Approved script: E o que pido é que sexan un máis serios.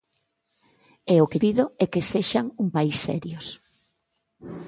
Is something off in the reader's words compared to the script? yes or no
no